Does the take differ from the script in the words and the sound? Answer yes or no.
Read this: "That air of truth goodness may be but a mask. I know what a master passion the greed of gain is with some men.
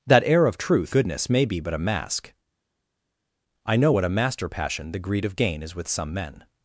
no